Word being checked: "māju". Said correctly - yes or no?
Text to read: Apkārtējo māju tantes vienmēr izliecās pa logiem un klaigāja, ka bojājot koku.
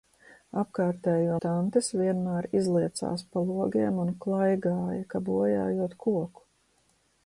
no